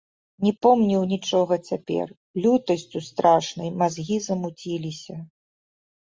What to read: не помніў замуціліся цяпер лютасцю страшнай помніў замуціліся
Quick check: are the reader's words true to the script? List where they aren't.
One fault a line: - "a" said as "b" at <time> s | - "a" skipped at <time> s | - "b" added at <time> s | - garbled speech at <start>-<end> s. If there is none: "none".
- "замуціліся" said as "нічога" at 1.1 s
- "помніў" said as "мазгі" at 3.8 s